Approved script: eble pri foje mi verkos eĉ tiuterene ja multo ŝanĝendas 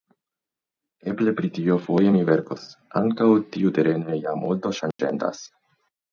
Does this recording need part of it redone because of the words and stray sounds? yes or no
yes